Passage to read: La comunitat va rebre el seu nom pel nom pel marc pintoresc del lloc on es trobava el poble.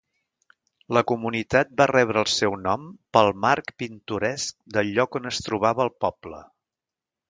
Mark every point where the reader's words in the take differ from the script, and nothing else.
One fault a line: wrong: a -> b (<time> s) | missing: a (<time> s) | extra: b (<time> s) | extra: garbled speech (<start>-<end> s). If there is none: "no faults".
missing: nom pel (3.3 s)